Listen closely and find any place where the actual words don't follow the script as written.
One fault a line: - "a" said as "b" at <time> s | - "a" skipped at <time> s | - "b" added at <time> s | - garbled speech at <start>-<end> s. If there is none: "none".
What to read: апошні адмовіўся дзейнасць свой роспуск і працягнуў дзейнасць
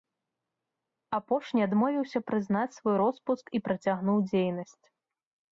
- "дзейнасць" said as "прызнаць" at 2.3 s